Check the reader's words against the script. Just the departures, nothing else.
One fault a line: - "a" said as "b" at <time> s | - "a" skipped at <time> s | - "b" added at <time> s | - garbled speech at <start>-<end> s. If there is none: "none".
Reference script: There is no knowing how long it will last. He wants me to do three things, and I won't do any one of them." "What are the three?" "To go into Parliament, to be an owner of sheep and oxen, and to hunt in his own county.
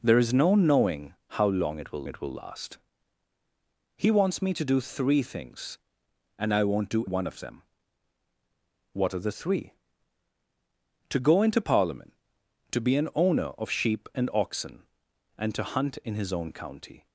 - "it will" added at 2.0 s
- "any" skipped at 7.0 s